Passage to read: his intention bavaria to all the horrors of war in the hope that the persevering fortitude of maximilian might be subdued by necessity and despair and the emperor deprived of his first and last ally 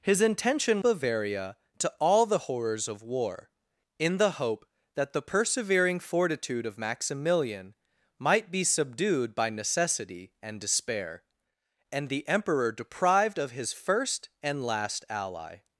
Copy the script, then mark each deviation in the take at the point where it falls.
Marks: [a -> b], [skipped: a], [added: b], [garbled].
his intention bavaria to all the horrors of war in the hope that the persevering fortitude of maximilian might be subdued by necessity and despair and the emperor deprived of his first and last ally